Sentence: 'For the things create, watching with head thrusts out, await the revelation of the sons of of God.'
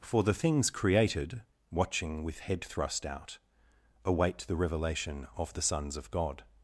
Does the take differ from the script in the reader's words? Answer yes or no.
yes